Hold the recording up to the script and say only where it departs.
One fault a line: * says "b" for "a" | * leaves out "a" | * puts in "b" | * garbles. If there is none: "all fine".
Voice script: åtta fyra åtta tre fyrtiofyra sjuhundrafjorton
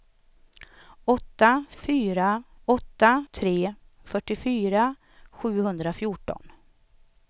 all fine